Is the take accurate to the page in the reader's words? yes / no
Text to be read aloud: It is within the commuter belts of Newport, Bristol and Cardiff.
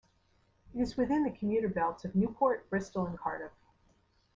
yes